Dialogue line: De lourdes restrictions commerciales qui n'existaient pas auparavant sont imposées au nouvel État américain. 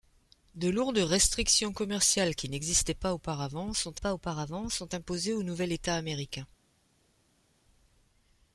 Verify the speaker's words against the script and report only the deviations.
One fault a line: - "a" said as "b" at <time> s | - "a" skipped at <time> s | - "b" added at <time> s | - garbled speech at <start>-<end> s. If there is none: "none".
- "pas auparavant sont" added at 4.0 s